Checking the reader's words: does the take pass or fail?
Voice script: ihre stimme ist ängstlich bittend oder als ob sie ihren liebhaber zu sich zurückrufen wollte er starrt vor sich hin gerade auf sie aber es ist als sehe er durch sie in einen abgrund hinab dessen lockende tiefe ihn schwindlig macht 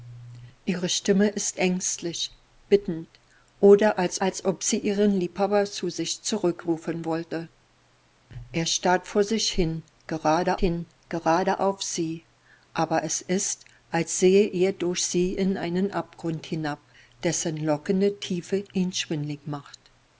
fail